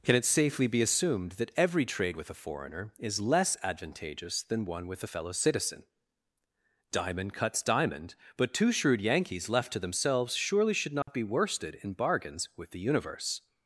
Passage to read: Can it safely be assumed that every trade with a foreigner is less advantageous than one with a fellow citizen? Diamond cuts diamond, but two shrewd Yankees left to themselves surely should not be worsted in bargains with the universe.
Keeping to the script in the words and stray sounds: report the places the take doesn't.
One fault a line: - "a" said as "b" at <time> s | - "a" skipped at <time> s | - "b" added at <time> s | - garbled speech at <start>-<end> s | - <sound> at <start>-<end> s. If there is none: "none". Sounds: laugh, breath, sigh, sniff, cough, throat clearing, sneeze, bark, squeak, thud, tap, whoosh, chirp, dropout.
- dropout at 11.0-11.1 s